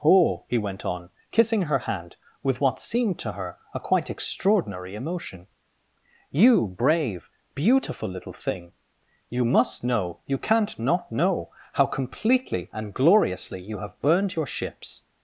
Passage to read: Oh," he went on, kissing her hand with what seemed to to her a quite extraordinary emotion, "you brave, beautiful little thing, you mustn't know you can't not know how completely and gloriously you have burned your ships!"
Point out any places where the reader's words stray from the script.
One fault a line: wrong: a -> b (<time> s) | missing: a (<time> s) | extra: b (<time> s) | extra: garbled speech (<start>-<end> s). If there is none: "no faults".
missing: to (3.3 s)
wrong: mustn't -> must (9.4 s)